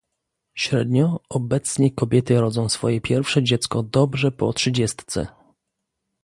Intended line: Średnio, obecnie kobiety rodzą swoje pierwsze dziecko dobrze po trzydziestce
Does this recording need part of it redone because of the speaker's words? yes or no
no